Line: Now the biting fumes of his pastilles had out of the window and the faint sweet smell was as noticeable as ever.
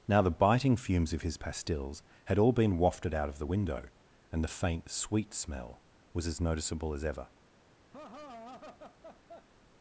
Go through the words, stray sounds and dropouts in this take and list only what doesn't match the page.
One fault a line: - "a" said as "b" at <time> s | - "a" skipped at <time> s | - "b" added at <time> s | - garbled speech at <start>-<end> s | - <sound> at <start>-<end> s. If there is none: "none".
- "all been wafted" added at 2.4 s
- laugh at 7.9-9.5 s